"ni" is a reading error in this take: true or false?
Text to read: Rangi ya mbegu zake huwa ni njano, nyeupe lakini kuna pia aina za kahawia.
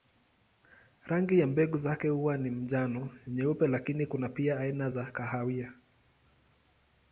false